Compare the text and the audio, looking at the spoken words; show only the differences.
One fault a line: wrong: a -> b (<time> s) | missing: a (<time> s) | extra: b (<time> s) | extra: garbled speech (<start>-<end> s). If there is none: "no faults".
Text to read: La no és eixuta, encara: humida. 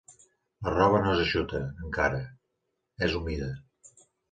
extra: roba (0.8 s)
extra: és (3.1 s)